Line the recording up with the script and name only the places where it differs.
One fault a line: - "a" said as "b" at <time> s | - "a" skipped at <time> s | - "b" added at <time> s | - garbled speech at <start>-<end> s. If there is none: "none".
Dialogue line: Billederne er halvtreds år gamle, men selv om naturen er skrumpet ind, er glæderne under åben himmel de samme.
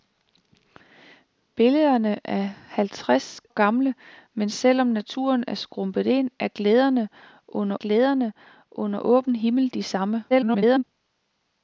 - "år" skipped at 3.4 s
- "glæderne under" added at 7.7 s
- garbled speech at 10.3-10.8 s